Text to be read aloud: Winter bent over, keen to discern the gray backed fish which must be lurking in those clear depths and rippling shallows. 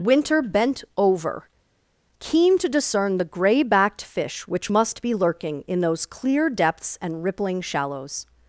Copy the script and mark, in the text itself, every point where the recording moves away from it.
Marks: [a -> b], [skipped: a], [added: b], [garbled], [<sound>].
Winter bent over, keen to discern the gray backed fish which must be lurking in those clear depths and rippling shallows.